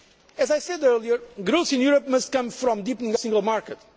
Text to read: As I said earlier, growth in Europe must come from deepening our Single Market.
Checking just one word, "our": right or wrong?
wrong